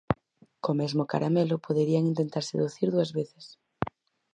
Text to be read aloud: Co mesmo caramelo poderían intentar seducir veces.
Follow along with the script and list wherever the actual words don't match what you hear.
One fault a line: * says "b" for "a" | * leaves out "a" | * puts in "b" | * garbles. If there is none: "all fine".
* puts in "dúas"